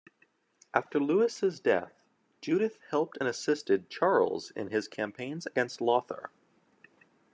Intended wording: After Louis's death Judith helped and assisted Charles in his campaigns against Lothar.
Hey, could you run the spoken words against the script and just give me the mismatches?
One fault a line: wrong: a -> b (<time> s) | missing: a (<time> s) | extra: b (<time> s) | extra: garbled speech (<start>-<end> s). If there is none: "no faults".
no faults